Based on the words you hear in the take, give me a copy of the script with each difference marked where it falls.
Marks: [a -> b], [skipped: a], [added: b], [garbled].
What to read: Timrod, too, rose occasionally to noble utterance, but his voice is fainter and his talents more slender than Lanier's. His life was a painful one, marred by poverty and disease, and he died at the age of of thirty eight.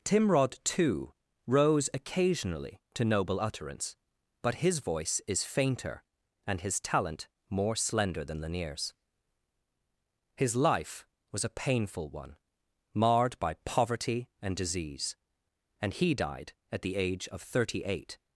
Timrod, too, rose occasionally to noble utterance, but his voice is fainter and his [talents -> talent] more slender than Lanier's. His life was a painful one, marred by poverty and disease, and he died at the age of [skipped: of] thirty eight.